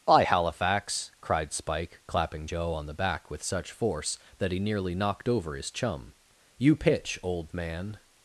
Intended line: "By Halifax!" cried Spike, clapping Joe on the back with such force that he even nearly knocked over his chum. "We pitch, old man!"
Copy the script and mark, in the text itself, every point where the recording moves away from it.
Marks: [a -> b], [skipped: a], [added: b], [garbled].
"By Halifax!" cried Spike, clapping Joe on the back with such force that he [skipped: even] nearly knocked over his chum. ["We -> You] pitch, old man!"